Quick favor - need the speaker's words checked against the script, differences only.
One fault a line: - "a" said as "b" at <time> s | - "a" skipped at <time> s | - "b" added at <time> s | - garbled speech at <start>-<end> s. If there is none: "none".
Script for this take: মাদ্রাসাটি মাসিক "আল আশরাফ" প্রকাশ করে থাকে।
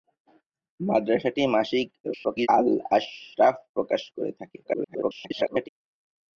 - garbled speech at 2.0-2.5 s
- garbled speech at 4.6-5.7 s